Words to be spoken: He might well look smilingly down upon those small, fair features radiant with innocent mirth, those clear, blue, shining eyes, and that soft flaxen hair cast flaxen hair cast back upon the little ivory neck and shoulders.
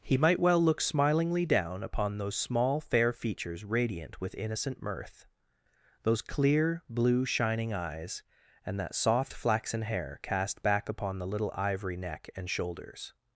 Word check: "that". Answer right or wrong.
right